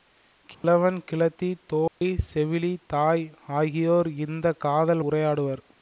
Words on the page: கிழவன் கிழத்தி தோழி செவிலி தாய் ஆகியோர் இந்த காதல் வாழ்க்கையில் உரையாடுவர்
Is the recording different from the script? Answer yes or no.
yes